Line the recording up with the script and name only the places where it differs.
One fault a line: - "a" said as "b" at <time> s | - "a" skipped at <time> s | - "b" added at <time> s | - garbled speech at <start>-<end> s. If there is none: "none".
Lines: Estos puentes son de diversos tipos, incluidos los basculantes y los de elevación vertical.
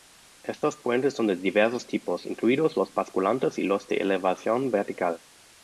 none